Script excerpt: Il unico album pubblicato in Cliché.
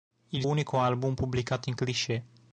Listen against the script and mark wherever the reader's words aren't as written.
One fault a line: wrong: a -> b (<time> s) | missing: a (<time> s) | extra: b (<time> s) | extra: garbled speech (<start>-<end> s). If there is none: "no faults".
no faults